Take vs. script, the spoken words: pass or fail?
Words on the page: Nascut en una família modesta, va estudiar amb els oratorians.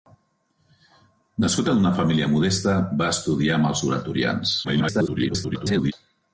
fail